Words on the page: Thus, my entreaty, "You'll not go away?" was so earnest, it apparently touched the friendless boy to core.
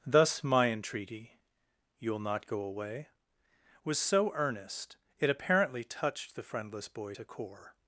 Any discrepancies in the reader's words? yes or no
no